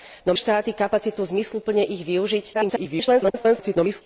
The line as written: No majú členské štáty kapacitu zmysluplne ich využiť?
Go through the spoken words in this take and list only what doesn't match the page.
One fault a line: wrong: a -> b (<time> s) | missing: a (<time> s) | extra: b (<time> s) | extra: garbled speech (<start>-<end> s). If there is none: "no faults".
missing: majú členské (0.4 s)
extra: garbled speech (2.5-4.0 s)